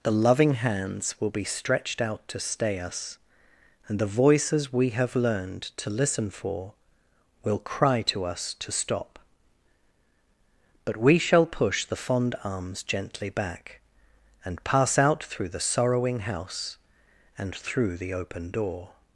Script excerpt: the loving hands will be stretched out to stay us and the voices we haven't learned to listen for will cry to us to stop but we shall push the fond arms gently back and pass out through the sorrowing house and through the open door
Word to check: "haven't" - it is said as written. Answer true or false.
false